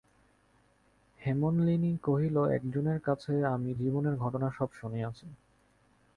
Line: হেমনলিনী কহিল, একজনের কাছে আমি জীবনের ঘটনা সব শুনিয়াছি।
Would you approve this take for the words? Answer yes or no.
yes